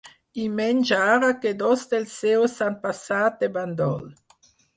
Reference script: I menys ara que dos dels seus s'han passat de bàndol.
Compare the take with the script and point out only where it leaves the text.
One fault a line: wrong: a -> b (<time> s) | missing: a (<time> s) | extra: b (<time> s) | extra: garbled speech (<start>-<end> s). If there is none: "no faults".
no faults